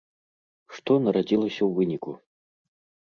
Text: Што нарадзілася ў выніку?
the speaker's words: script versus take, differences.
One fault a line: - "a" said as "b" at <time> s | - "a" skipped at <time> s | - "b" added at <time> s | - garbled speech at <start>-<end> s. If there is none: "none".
none